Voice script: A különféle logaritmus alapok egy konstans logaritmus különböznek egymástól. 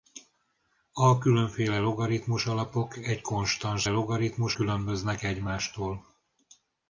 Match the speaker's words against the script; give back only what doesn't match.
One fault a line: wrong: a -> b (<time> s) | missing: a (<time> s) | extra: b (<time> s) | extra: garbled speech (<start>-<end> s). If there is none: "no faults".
no faults